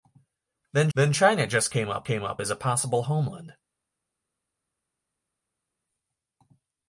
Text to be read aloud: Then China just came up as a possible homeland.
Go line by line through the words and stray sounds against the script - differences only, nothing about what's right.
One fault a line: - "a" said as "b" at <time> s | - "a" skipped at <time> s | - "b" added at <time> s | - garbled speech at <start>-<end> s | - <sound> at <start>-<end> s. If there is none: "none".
- "then" added at 0.9 s
- "came up" added at 2.0 s